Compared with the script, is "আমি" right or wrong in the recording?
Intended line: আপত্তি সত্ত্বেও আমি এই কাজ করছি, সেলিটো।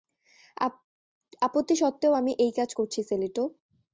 right